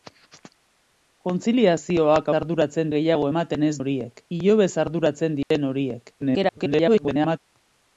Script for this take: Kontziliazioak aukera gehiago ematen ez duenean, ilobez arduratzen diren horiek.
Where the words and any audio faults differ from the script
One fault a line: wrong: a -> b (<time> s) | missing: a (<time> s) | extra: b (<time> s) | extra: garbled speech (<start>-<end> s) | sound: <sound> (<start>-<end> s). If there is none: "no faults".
wrong: aukera -> arduratzen (2.4 s)
wrong: duenean -> horiek (3.8 s)
sound: dropout (5.4-5.5 s)
extra: garbled speech (6.2-7.4 s)